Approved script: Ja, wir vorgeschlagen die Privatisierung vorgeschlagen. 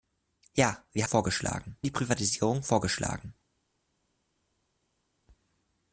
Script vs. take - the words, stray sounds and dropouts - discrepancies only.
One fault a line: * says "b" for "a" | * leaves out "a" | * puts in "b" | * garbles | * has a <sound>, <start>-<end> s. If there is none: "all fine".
all fine